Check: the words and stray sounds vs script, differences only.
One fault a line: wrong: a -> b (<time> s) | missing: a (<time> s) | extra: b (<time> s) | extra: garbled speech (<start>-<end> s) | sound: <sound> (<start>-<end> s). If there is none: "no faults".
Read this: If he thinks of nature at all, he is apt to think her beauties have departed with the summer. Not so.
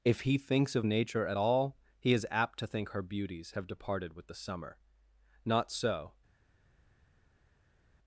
no faults